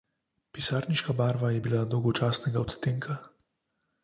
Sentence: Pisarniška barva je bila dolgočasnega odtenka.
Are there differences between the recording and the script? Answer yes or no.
no